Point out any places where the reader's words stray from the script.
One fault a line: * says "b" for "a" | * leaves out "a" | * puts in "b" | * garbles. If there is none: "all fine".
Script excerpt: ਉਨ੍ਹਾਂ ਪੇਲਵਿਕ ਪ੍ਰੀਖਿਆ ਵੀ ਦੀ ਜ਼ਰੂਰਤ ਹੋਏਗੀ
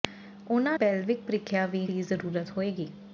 all fine